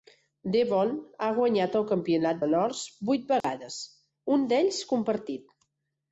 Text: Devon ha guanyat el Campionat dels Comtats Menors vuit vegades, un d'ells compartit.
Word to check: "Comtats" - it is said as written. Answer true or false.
false